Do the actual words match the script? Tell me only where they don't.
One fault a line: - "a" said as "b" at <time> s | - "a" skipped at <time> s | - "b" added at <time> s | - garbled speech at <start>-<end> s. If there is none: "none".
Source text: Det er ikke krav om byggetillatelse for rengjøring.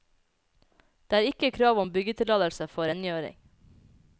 none